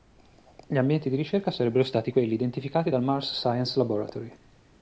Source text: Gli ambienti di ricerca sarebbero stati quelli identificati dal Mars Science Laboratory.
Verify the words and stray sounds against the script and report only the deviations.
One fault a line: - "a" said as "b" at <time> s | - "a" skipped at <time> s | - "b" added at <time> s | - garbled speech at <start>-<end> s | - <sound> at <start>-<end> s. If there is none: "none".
none